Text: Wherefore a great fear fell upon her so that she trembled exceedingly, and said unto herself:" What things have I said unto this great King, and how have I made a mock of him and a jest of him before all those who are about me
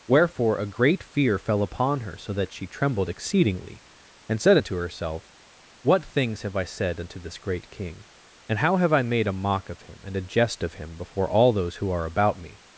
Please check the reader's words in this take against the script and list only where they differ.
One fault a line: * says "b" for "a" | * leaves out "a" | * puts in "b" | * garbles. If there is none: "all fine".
all fine